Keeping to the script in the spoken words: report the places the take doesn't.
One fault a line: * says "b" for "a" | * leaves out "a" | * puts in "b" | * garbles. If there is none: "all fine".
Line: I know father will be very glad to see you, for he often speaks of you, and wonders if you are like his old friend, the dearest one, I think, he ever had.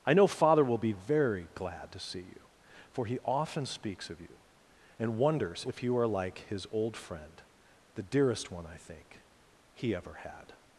all fine